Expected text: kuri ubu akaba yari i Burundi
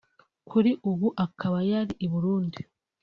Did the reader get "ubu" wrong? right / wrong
right